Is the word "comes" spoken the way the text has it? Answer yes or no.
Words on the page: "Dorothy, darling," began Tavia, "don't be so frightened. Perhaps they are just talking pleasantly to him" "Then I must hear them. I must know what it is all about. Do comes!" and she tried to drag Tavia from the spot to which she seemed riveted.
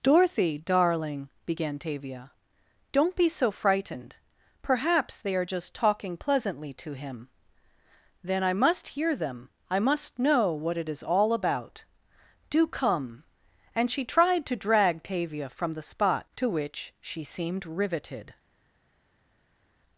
no